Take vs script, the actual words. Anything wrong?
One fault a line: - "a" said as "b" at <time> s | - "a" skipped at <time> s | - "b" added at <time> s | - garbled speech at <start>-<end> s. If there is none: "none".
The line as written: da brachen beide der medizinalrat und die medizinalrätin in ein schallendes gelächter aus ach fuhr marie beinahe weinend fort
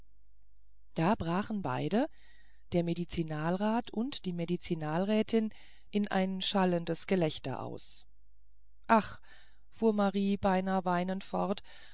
none